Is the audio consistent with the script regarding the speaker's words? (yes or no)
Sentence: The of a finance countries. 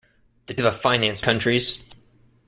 yes